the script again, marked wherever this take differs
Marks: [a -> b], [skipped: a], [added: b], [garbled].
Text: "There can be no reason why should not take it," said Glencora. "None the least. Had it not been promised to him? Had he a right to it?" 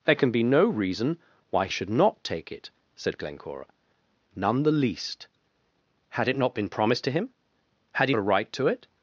"There can be no reason why should not take it," said Glencora. "None the least. Had it not been promised to him? Had he a right to it?"